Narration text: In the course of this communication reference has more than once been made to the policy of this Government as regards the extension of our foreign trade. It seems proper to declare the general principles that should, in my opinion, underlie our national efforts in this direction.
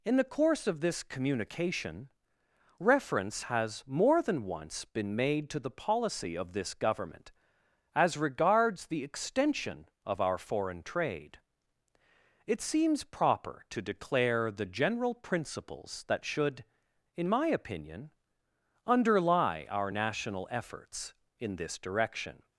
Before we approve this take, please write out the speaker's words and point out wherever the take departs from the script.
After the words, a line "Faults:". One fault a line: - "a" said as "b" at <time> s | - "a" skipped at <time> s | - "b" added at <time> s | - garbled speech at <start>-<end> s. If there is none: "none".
In the course of this communication reference has more than once been made to the policy of this Government as regards the extension of our foreign trade. It seems proper to declare the general principles that should, in my opinion, underlie our national efforts in this direction.
Faults:
none